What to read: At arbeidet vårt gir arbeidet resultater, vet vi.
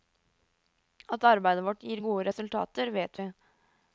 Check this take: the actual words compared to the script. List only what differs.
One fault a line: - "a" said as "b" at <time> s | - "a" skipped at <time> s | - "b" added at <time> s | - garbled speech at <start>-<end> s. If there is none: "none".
- "arbeidet" said as "gode" at 2.0 s